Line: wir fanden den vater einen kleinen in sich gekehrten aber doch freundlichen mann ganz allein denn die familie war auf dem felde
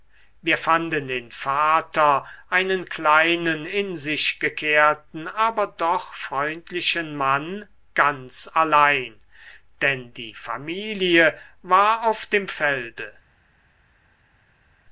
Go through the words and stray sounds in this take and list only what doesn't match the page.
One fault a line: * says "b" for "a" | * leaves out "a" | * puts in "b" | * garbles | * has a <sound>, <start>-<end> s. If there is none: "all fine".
all fine